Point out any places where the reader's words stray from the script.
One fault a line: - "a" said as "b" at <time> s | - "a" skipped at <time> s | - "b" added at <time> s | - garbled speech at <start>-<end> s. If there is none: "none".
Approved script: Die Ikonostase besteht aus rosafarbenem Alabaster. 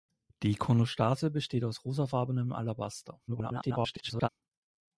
- garbled speech at 3.3-4.3 s